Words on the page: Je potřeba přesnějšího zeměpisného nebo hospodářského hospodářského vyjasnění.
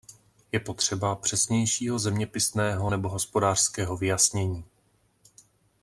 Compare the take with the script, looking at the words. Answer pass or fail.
fail